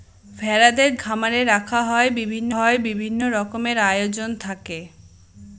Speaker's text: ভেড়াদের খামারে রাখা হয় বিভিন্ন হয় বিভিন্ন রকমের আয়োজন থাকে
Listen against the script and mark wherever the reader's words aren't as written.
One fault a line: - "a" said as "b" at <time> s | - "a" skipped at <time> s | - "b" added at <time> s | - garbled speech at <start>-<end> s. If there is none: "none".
none